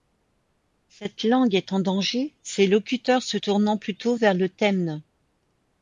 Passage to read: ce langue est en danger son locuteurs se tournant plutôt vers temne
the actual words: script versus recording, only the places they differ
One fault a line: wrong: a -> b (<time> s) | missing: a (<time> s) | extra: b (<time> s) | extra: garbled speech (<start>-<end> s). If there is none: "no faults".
wrong: ce -> cette (0.9 s)
wrong: son -> ses (2.4 s)
extra: le (4.3 s)